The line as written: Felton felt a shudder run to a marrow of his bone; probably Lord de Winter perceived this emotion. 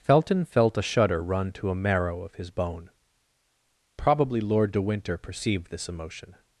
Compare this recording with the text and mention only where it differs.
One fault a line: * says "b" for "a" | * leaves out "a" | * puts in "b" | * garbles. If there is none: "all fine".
all fine